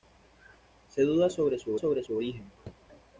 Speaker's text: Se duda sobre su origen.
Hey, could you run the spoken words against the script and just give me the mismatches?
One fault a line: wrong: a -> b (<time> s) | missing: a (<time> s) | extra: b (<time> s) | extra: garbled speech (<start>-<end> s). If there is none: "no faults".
extra: sobre su (1.7 s)